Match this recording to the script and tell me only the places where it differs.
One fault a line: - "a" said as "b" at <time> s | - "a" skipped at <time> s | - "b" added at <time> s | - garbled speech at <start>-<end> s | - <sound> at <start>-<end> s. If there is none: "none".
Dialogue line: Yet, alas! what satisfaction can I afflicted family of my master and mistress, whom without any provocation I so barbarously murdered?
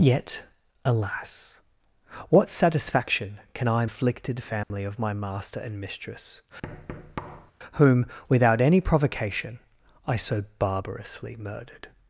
- dropout at 4.6-4.7 s
- thud at 6.6-7.5 s